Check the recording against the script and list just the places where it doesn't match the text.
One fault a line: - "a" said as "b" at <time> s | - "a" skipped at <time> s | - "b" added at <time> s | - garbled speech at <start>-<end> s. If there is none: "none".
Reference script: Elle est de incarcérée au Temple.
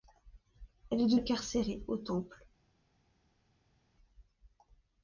none